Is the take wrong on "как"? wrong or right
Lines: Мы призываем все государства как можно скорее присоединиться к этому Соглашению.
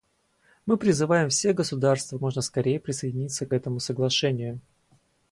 wrong